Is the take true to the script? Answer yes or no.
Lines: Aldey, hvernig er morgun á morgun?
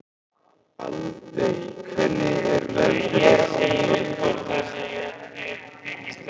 no